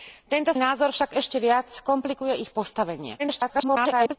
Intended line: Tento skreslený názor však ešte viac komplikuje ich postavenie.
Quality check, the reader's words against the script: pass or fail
fail